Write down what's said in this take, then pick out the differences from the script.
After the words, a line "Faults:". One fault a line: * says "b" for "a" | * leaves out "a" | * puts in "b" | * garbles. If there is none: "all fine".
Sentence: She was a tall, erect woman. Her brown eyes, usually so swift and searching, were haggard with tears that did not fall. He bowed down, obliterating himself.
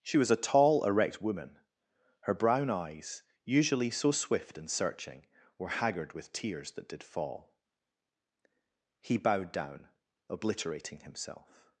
She was a tall, erect woman. Her brown eyes, usually so swift and searching, were haggard with tears that did fall. He bowed down, obliterating himself.
Faults:
* leaves out "not"